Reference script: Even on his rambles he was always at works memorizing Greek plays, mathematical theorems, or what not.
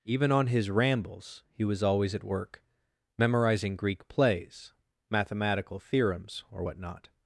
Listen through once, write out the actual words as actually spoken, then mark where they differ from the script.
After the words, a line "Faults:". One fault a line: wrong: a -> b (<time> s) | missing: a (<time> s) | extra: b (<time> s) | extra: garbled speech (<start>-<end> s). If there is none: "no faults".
Even on his rambles he was always at work memorizing Greek plays, mathematical theorems, or what not.
Faults:
wrong: works -> work (2.2 s)